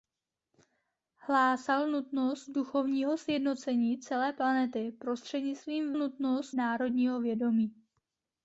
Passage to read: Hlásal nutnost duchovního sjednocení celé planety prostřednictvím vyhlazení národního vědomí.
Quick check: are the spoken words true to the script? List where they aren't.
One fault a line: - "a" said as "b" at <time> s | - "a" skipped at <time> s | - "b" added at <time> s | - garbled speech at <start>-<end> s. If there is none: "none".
- "vyhlazení" said as "nutnost" at 6.0 s